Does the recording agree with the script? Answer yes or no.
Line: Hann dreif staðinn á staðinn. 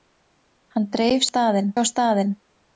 yes